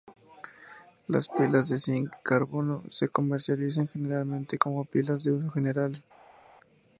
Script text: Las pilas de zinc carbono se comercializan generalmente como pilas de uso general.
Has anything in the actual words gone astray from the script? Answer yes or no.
no